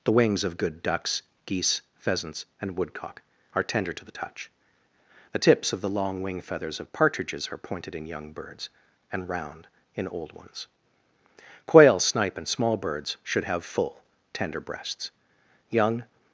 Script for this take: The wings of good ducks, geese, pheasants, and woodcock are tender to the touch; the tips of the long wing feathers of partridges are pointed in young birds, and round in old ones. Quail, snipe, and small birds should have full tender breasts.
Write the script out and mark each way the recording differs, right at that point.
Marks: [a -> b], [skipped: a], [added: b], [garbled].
The wings of good ducks, geese, pheasants, and woodcock are tender to the touch; the tips of the long wing feathers of partridges are pointed in young birds, and round in old ones. Quail, snipe, and small birds should have full tender breasts. [added: Young]